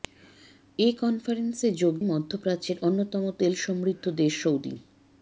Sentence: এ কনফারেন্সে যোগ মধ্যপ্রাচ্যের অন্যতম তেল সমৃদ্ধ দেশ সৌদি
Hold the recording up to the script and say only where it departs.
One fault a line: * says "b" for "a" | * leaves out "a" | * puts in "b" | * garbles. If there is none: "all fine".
all fine